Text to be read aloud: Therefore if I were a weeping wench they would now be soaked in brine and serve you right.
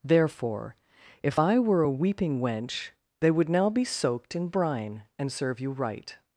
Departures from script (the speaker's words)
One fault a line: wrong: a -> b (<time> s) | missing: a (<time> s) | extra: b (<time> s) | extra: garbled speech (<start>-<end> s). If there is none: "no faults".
no faults